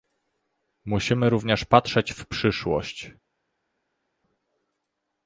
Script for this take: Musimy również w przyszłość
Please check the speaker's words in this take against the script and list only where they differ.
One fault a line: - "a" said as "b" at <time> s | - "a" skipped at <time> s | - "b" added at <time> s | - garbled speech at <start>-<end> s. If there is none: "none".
- "patrzeć" added at 1.6 s